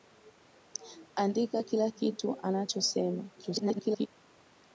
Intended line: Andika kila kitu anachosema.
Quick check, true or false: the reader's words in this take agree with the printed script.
false